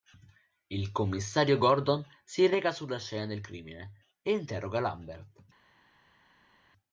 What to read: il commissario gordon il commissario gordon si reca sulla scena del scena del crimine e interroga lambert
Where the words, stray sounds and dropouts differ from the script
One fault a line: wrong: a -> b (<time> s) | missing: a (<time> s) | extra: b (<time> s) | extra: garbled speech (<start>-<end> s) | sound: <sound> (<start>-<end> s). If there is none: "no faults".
missing: il commissario gordon (2.0 s)
missing: scena del (3.4 s)